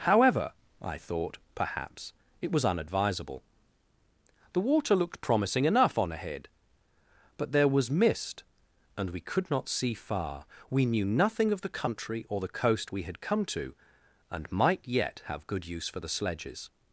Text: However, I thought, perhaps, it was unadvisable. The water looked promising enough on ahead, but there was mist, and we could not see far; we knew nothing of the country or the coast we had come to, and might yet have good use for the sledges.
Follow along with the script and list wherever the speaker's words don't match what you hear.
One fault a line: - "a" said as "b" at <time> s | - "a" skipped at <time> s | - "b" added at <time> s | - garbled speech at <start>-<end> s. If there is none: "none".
none